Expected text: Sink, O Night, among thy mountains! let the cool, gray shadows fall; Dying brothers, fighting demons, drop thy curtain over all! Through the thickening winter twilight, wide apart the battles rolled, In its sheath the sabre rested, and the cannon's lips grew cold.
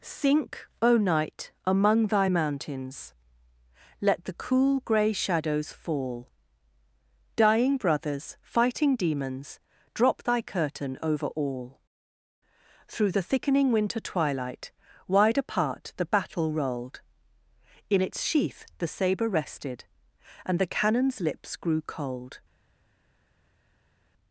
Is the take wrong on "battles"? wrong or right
wrong